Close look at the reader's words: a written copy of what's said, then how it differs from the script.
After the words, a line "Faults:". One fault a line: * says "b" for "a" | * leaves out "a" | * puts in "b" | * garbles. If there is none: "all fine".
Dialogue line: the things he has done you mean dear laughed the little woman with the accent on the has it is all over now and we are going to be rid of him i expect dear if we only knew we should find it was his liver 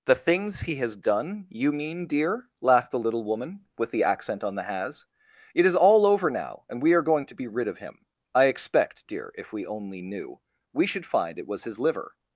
the things he has done you mean dear laughed the little woman with the accent on the has it is all over now and we are going to be rid of him i expect dear if we only knew we should find it was his liver
Faults:
all fine